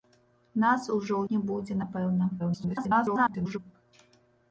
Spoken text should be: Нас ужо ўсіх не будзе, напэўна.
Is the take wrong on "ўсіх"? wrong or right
wrong